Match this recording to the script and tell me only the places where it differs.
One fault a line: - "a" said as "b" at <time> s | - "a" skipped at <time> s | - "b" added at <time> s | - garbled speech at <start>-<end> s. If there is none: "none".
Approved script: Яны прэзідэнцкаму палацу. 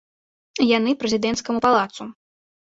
none